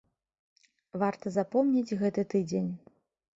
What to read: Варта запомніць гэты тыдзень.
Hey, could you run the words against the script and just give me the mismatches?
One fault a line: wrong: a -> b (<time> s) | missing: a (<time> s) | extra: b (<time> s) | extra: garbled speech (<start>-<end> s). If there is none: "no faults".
no faults